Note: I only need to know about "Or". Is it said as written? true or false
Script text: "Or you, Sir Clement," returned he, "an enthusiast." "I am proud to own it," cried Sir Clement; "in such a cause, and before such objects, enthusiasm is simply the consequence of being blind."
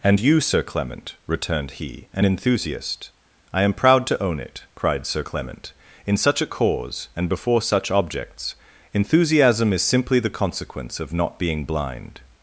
false